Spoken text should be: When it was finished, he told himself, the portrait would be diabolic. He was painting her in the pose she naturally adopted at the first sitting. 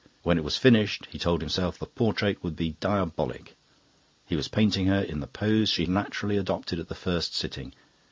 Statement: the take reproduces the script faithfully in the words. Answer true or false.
true